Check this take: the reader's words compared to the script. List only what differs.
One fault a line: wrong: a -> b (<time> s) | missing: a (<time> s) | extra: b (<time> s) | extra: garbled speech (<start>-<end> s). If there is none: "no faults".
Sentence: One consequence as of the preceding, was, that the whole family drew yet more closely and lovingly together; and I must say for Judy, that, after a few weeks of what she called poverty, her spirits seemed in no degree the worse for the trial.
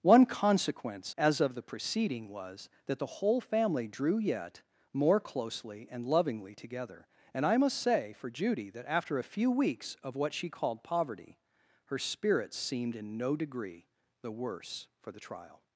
no faults